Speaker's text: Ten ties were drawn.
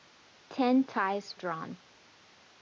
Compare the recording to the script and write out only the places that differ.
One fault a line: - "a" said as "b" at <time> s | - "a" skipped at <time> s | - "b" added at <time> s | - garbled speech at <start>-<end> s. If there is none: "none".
- "were" skipped at 1.4 s